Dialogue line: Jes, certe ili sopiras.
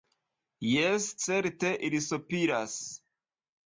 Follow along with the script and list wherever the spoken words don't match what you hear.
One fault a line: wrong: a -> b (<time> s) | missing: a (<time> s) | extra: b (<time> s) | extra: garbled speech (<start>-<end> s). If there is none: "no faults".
no faults